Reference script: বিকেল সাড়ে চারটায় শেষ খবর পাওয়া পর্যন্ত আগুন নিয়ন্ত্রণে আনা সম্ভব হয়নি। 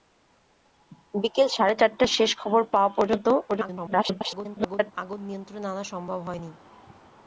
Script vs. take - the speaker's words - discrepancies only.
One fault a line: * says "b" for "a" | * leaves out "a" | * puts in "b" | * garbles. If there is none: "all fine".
* garbles